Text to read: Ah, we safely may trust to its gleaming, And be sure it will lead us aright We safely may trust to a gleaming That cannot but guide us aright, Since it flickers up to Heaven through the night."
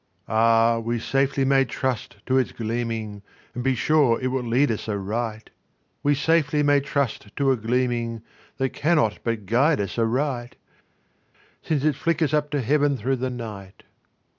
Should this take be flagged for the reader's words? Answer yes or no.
no